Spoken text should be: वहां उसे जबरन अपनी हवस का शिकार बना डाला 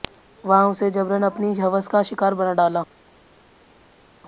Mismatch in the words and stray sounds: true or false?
false